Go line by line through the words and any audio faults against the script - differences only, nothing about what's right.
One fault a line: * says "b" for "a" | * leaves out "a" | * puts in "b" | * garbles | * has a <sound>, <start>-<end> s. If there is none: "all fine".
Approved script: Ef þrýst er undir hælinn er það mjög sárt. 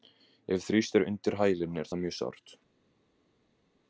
all fine